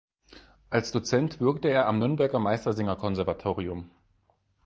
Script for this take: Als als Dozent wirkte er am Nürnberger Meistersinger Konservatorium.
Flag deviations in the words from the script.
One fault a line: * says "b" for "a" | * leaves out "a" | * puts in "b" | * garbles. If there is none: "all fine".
* leaves out "als"